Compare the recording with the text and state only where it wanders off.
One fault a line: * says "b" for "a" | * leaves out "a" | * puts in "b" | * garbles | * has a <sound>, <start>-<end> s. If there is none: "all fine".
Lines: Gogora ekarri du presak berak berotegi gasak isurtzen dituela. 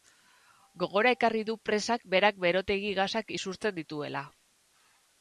all fine